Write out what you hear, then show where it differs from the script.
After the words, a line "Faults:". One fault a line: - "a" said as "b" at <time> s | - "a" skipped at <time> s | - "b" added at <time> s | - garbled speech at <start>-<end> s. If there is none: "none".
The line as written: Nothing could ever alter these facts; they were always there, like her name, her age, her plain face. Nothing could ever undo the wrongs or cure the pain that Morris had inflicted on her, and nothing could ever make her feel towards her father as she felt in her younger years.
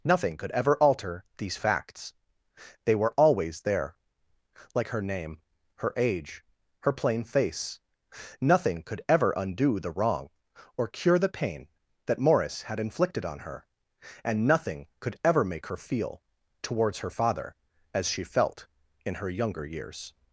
Nothing could ever alter these facts; they were always there, like her name, her age, her plain face. Nothing could ever undo the wrong or cure the pain that Morris had inflicted on her, and nothing could ever make her feel towards her father as she felt in her younger years.
Faults:
- "wrongs" said as "wrong" at 9.9 s